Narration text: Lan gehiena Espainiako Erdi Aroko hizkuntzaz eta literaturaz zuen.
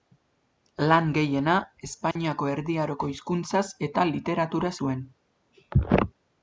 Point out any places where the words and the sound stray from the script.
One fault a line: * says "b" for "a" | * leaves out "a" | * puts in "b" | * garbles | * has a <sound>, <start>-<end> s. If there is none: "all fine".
* has a dropout, 2.1-2.2 s